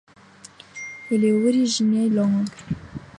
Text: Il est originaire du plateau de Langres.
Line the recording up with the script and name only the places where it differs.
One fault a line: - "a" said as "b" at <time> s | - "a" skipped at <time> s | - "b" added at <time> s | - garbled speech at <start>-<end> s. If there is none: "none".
- "du plateau de" skipped at 2.1 s